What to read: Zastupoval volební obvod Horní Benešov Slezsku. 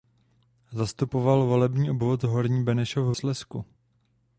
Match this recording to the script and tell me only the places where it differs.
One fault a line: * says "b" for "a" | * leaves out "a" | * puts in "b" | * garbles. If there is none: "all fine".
all fine